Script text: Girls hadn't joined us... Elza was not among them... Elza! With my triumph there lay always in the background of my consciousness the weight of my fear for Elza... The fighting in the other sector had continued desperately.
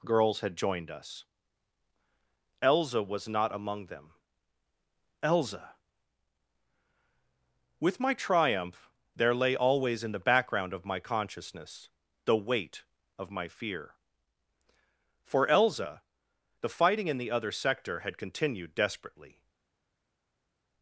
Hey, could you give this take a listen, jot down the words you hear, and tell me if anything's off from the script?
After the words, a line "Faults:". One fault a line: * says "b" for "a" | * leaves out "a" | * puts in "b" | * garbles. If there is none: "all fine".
Girls had joined us... Elza was not among them... Elza! With my triumph there lay always in the background of my consciousness the weight of my fear for Elza... The fighting in the other sector had continued desperately.
Faults:
* says "had" for "hadn't"